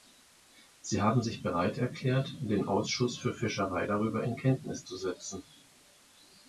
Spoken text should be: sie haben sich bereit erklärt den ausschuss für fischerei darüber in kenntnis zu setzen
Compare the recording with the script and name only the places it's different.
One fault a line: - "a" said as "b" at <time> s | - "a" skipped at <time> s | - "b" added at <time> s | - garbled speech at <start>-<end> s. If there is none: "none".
none